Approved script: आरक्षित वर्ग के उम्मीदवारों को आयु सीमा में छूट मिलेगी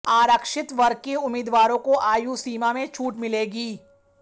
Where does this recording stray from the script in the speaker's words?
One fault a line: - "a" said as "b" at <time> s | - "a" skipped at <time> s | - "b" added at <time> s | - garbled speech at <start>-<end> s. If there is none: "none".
none